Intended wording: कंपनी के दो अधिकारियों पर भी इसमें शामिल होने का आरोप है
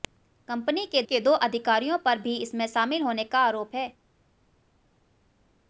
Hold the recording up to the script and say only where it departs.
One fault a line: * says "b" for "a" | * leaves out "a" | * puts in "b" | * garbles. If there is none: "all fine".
* puts in "के"